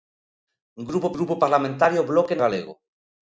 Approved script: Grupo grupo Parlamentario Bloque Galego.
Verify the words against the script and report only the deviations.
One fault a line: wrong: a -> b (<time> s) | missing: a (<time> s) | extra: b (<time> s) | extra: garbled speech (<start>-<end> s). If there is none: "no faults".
no faults